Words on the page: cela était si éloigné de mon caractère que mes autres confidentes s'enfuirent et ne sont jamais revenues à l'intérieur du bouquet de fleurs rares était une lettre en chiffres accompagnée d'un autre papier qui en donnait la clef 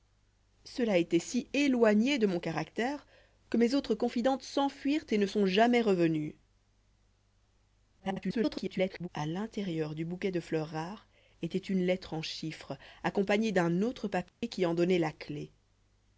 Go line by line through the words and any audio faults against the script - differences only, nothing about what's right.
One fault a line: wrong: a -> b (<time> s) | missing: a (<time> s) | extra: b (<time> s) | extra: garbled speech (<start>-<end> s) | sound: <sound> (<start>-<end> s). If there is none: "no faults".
extra: garbled speech (8.0-9.1 s)
sound: dropout (14.3-14.4 s)